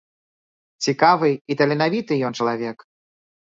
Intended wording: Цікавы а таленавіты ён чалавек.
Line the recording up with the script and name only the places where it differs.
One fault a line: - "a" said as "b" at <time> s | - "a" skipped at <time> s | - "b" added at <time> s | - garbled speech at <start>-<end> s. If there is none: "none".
- "а" said as "і" at 1.3 s